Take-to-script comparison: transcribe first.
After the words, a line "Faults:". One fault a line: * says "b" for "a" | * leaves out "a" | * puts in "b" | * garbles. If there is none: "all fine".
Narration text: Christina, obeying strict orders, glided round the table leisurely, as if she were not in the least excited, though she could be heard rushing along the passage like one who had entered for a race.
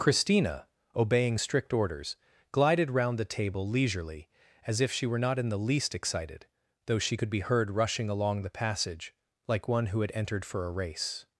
Christina, obeying strict orders, glided round the table leisurely, as if she were not in the least excited, though she could be heard rushing along the passage like one who had entered for a race.
Faults:
all fine